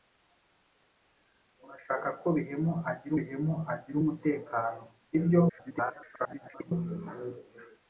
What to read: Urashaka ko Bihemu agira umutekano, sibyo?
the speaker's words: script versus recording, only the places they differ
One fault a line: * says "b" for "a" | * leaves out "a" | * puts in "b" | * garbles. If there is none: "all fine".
* puts in "Bihemu agira"
* garbles